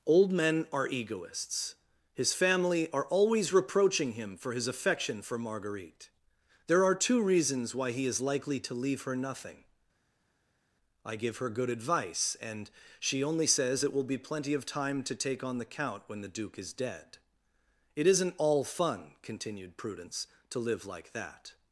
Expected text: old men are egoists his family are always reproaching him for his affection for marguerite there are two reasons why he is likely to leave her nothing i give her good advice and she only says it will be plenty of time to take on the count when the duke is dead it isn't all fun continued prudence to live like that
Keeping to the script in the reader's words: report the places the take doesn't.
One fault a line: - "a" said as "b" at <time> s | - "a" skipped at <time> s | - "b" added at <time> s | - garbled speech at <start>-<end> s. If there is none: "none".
none